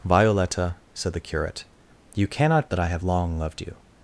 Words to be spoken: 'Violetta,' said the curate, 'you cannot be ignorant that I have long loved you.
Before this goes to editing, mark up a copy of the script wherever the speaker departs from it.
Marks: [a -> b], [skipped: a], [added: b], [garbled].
'Violetta,' said the curate, 'you cannot [skipped: be ignorant] that I have long loved you.